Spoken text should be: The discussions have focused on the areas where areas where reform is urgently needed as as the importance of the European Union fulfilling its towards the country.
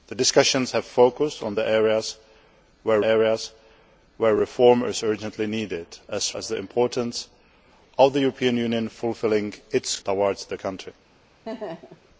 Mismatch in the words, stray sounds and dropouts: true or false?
true